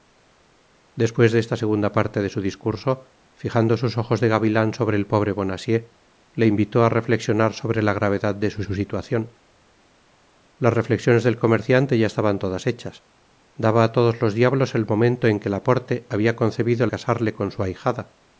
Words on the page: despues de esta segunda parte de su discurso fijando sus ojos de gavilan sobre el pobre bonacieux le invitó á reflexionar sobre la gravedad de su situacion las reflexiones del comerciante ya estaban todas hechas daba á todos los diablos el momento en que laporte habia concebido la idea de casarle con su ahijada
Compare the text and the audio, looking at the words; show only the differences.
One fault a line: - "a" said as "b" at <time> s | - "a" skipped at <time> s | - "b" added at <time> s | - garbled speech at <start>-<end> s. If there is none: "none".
- "su" added at 8.6 s
- "la idea de" skipped at 16.9 s